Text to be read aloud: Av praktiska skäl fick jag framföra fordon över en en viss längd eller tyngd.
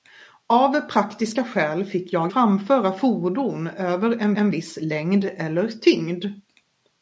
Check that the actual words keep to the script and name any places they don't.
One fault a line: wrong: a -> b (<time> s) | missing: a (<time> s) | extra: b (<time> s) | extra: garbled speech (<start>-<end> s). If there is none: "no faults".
no faults